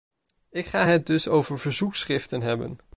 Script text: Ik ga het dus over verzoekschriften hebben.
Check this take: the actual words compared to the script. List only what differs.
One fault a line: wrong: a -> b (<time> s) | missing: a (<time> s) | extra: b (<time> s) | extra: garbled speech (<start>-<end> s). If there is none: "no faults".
no faults